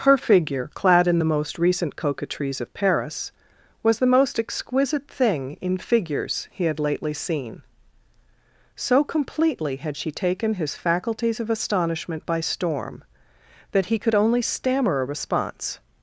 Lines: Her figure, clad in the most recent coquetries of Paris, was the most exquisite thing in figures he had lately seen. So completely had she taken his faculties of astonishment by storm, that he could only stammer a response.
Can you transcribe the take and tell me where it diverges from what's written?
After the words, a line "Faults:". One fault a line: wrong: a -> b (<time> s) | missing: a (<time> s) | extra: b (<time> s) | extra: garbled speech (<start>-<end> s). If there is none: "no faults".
Her figure, clad in the most recent coquetries of Paris, was the most exquisite thing in figures he had lately seen. So completely had she taken his faculties of astonishment by storm, that he could only stammer a response.
Faults:
no faults